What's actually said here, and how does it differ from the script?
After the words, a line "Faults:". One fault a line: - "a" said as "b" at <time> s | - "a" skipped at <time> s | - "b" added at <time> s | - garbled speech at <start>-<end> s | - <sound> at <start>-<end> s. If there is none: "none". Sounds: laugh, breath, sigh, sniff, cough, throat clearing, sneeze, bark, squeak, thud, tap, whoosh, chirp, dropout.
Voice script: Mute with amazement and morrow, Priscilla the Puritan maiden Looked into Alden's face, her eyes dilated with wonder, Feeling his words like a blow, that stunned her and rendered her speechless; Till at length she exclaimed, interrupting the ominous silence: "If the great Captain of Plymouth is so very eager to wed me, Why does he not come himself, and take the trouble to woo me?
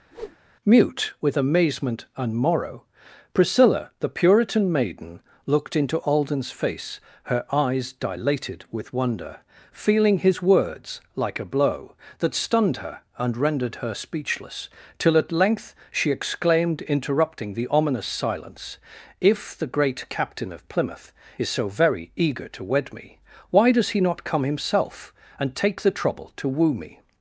Mute with amazement and morrow, Priscilla the Puritan maiden Looked into Alden's face, her eyes dilated with wonder, Feeling his words like a blow, that stunned her and rendered her speechless; Till at length she exclaimed, interrupting the ominous silence: "If the great Captain of Plymouth is so very eager to wed me, Why does he not come himself, and take the trouble to woo me?
Faults:
- whoosh at 0.1-0.4 s